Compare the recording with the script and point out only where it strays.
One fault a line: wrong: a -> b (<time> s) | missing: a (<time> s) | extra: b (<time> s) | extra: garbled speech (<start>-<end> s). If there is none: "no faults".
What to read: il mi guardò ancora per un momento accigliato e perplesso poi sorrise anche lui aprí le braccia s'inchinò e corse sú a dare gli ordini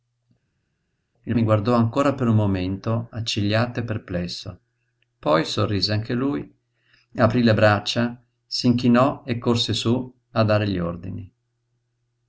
no faults